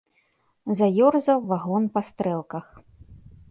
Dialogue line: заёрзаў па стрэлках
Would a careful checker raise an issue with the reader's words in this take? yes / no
yes